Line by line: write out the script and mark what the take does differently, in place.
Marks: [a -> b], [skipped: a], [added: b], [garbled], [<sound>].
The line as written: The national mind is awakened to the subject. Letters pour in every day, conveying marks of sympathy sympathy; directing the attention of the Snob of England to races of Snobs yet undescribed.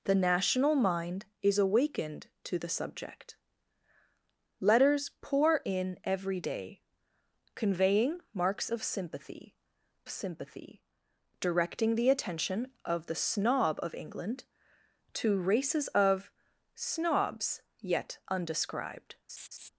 The national mind is awakened to the subject. Letters pour in every day, conveying marks of sympathy sympathy; directing the attention of the Snob of England to races of Snobs yet undescribed. [laugh]